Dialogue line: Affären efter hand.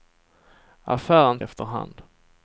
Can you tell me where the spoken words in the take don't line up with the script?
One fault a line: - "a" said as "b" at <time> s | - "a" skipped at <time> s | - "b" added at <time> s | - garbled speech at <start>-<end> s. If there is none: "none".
none